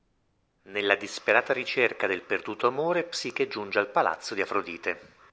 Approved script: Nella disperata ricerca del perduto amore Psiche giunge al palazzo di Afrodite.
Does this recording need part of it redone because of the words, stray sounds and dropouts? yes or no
no